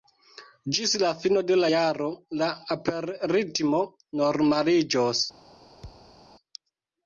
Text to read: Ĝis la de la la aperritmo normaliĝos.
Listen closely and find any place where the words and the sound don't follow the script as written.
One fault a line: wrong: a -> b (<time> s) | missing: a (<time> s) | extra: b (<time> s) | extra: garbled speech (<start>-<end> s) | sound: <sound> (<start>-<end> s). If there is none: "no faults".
extra: fino (1.2 s)
extra: jaro (1.7 s)
sound: thud (5.8-6.2 s)